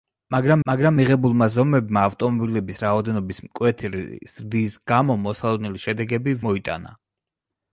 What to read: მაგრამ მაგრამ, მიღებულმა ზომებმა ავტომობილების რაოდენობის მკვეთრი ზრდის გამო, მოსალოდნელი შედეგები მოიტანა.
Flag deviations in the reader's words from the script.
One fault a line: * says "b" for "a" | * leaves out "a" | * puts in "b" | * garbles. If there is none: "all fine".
all fine